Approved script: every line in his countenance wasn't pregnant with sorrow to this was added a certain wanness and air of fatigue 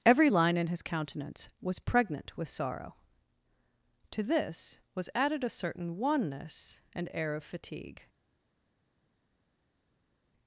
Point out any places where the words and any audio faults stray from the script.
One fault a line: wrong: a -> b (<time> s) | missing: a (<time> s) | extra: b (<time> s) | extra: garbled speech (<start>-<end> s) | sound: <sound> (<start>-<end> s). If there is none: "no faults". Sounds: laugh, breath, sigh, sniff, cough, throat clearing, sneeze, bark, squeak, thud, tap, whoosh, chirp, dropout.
wrong: wasn't -> was (1.6 s)